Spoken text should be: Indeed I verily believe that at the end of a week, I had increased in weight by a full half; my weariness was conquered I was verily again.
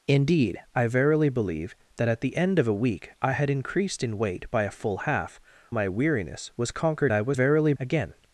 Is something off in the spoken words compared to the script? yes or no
no